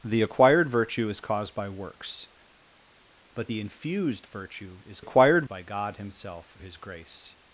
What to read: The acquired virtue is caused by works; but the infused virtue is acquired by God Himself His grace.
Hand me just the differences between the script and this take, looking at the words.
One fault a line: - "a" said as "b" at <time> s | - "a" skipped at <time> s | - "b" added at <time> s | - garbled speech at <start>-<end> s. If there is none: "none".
none